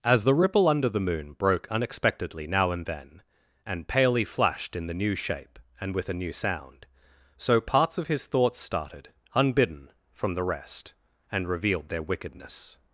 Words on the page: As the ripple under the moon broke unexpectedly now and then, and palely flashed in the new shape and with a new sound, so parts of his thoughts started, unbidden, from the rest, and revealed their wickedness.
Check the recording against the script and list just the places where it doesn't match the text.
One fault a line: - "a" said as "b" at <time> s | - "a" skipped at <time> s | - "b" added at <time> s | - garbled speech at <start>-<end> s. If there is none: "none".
none